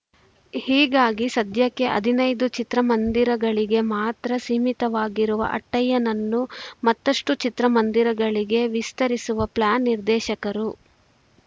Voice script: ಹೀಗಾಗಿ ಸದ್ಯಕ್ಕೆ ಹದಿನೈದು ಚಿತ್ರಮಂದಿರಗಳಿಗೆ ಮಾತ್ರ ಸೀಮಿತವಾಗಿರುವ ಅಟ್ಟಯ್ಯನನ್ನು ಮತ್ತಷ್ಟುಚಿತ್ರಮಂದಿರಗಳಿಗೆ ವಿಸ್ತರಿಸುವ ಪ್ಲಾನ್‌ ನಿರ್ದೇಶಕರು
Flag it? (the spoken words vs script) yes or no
no